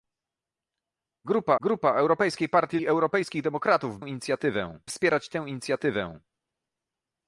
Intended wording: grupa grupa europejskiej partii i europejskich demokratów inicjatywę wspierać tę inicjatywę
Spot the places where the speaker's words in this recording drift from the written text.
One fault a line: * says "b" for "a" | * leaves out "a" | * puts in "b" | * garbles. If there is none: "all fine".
all fine